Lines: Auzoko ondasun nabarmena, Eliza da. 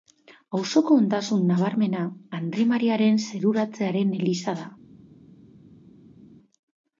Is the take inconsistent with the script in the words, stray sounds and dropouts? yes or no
yes